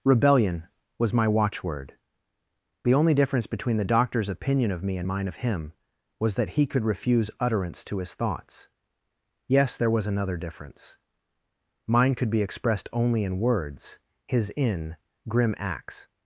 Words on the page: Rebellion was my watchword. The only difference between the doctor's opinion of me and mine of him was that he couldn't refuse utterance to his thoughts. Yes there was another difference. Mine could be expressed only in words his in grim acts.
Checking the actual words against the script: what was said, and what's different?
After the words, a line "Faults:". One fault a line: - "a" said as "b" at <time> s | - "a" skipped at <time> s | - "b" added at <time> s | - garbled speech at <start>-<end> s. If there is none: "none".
Rebellion was my watchword. The only difference between the doctor's opinion of me and mine of him was that he could refuse utterance to his thoughts. Yes there was another difference. Mine could be expressed only in words his in grim acts.
Faults:
- "couldn't" said as "could" at 6.7 s